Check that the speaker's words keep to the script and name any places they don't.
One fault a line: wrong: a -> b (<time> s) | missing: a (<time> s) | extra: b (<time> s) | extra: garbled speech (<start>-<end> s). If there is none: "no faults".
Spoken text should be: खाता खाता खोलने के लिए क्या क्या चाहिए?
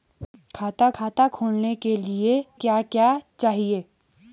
no faults